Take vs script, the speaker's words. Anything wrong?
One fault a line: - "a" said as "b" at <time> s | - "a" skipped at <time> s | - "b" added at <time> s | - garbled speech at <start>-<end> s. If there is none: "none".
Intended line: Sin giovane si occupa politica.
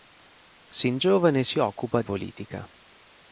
none